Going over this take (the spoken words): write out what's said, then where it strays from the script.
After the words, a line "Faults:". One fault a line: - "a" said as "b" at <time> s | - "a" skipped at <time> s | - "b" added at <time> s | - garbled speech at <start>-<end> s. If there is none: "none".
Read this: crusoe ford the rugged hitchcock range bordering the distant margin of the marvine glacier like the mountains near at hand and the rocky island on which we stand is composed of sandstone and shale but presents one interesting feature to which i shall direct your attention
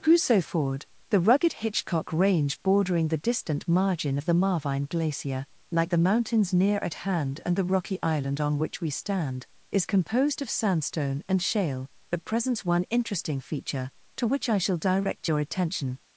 crusoe ford the rugged hitchcock range bordering the distant margin of the marvine glacier like the mountains near at hand and the rocky island on which we stand is composed of sandstone and shale but presents one interesting feature to which i shall direct your attention
Faults:
none